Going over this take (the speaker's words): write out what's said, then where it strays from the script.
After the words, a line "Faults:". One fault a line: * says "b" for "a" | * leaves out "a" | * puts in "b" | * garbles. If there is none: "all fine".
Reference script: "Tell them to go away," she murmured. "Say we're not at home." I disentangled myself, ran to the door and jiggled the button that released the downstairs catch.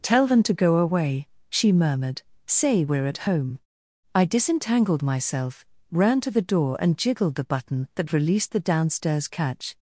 "Tell them to go away," she murmured. "Say we're at home." I disentangled myself, ran to the door and jiggled the button that released the downstairs catch.
Faults:
* leaves out "not"